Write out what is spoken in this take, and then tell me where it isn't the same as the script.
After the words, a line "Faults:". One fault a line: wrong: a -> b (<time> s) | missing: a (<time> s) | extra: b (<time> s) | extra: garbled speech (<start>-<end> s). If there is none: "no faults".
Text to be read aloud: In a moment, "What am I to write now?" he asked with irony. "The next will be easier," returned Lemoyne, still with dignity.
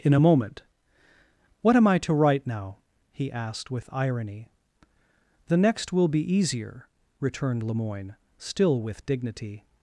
In a moment, "What am I to write now?" he asked with irony. "The next will be easier," returned Lemoyne, still with dignity.
Faults:
no faults